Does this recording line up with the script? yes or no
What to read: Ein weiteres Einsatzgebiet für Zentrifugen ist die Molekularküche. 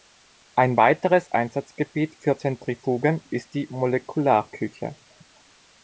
yes